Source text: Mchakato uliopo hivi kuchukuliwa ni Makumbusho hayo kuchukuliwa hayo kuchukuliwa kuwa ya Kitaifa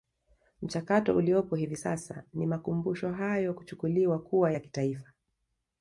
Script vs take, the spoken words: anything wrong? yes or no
yes